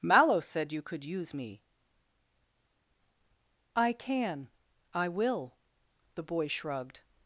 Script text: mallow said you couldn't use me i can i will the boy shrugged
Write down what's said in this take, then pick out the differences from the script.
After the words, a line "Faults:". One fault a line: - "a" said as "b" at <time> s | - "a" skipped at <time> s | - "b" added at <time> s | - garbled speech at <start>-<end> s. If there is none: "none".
mallow said you could use me i can i will the boy shrugged
Faults:
- "couldn't" said as "could" at 0.8 s